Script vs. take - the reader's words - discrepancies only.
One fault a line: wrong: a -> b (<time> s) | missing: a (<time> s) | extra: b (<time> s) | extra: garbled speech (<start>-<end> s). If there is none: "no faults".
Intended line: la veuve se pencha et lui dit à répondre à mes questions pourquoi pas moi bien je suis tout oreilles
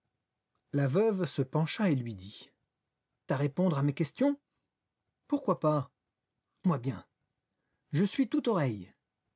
no faults